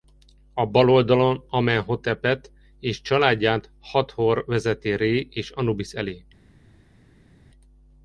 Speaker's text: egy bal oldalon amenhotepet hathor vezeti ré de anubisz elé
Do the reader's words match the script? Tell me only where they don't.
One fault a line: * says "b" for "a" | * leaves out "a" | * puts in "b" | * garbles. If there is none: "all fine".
* says "a" for "egy"
* puts in "és családját"
* says "és" for "de"